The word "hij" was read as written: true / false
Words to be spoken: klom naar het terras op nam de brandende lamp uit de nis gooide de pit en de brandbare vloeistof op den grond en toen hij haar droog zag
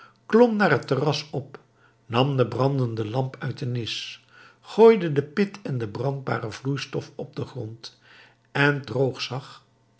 false